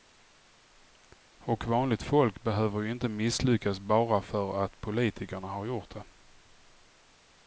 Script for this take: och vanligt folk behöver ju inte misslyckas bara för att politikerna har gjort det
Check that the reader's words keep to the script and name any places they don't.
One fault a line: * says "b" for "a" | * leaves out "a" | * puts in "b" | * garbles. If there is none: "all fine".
all fine